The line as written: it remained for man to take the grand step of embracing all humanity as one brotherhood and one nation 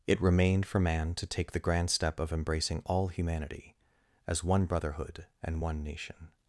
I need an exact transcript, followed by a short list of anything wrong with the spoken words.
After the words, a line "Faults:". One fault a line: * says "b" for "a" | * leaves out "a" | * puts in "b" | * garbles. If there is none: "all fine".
it remained for man to take the grand step of embracing all humanity as one brotherhood and one nation
Faults:
all fine